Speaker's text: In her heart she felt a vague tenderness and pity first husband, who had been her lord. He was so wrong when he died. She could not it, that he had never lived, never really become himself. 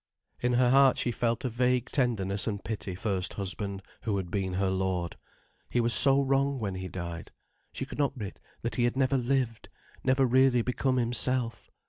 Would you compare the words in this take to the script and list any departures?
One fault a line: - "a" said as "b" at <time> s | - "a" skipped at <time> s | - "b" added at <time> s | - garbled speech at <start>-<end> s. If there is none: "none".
none